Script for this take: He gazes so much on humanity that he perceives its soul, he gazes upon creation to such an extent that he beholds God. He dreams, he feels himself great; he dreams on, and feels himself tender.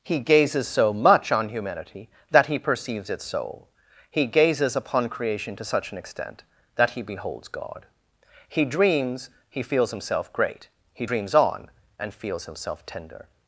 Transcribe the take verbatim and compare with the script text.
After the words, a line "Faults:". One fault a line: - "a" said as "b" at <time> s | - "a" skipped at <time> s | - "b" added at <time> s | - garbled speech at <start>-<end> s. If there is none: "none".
He gazes so much on humanity that he perceives its soul, he gazes upon creation to such an extent that he beholds God. He dreams, he feels himself great; he dreams on, and feels himself tender.
Faults:
none